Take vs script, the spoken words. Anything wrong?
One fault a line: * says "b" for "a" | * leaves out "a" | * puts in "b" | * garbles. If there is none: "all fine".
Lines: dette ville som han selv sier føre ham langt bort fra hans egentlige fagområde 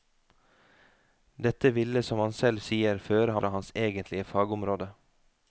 * leaves out "ham langt bort"